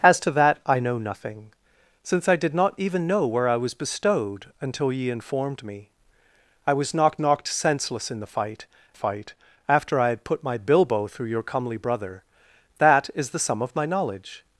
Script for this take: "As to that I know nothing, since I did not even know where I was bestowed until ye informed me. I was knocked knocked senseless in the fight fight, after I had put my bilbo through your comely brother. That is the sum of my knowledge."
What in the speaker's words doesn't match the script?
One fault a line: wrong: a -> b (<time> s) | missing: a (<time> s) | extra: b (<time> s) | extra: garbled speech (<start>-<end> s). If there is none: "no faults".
no faults